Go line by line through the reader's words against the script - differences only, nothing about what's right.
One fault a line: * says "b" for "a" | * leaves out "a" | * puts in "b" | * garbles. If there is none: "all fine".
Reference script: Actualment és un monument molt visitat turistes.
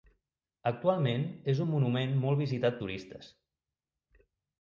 all fine